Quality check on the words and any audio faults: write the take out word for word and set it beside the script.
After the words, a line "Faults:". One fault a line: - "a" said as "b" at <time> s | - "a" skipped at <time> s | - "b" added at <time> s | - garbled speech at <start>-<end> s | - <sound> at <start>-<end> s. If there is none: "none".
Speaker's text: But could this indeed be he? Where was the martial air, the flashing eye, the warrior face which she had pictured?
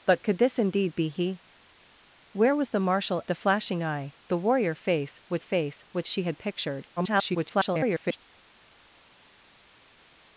But could this indeed be he? Where was the martial the flashing eye, the warrior face which face which she had pictured? [garbled]
Faults:
- "air" skipped at 3.2 s
- "face which" added at 5.4 s
- garbled speech at 7.0-8.2 s